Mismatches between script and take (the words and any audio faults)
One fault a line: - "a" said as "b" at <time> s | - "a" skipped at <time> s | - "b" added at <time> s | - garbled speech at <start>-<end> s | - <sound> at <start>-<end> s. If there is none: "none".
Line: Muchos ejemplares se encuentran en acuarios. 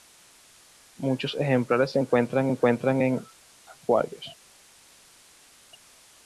- "encuentran" added at 2.5 s